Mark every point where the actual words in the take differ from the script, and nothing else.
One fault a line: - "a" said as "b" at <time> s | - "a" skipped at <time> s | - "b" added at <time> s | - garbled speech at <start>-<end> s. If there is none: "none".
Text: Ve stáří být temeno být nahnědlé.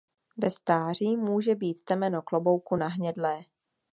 - "může" added at 1.2 s
- "být" said as "klobouku" at 2.2 s